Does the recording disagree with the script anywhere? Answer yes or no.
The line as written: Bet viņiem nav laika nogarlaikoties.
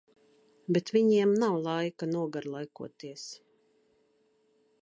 no